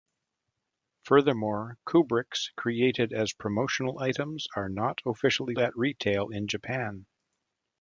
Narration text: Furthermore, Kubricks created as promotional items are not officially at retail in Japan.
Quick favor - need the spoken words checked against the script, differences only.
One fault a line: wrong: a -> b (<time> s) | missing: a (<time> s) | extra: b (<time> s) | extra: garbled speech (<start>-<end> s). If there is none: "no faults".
no faults